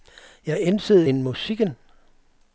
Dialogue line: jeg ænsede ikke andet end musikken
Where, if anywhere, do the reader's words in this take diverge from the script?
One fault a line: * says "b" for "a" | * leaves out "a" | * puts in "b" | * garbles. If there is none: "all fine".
* leaves out "ikke andet"